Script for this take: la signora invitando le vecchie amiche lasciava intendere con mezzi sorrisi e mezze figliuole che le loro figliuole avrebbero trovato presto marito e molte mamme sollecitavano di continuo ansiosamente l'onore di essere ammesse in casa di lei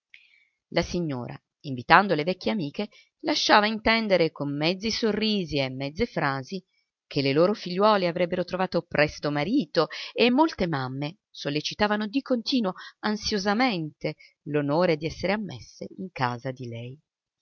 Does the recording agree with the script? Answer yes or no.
no